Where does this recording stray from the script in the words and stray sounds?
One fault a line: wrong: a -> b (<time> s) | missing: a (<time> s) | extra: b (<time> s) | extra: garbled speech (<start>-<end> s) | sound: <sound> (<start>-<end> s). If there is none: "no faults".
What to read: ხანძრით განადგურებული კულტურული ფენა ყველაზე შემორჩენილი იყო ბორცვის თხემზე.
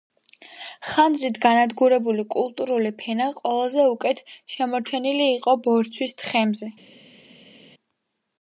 extra: უკეთ (3.9 s)